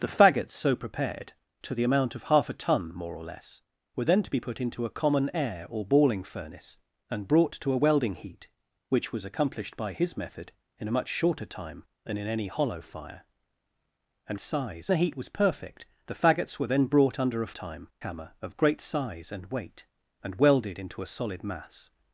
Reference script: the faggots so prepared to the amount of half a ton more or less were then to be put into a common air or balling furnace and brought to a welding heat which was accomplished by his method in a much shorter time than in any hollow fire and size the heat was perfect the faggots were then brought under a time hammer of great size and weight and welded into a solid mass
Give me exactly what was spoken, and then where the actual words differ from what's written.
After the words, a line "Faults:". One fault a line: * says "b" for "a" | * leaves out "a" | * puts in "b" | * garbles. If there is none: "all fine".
the faggots so prepared to the amount of half a ton more or less were then to be put into a common air or balling furnace and brought to a welding heat which was accomplished by his method in a much shorter time than in any hollow fire and size the heat was perfect the faggots were then brought under a time hammer of great size and weight and welded into a solid mass
Faults:
all fine